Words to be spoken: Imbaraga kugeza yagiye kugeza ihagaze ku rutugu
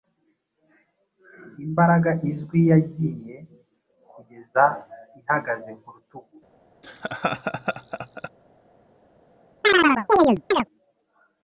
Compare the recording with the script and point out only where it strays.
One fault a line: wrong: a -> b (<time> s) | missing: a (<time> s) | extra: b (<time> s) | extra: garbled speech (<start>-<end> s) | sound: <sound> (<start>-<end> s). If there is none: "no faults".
wrong: kugeza -> izwi (2.3 s)
sound: laugh (6.8-8.3 s)
sound: chirp (9.6-10.7 s)